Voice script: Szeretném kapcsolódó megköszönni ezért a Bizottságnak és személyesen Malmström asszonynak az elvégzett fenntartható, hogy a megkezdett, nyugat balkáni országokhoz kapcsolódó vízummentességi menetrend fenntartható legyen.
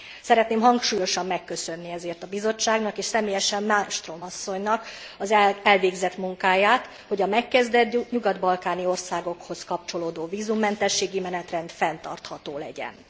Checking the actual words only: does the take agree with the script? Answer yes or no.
no